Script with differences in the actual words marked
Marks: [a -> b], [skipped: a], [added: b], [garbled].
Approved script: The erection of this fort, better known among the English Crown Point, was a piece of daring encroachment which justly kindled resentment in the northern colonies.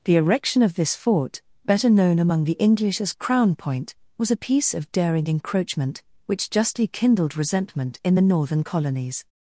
The erection of this fort, better known among the English [added: as] Crown Point, was a piece of daring encroachment which justly kindled resentment in the northern colonies.